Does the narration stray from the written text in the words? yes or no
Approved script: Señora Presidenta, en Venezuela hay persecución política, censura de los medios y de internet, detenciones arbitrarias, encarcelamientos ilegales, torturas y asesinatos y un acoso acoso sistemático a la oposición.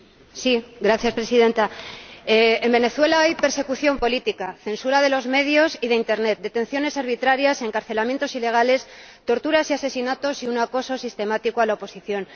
yes